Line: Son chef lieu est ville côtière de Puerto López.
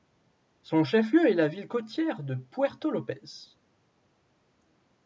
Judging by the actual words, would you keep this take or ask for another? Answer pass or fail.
fail